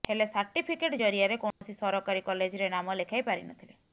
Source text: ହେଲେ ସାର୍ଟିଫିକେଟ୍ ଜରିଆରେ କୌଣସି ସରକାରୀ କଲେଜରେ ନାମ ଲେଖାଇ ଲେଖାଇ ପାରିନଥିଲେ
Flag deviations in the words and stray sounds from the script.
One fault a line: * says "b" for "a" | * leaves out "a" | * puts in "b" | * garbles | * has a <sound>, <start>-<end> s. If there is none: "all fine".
* has a dropout, 1.5-1.6 s
* leaves out "ଲେଖାଇ"